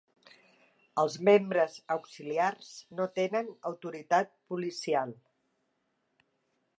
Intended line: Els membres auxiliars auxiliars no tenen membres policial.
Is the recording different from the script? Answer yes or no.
yes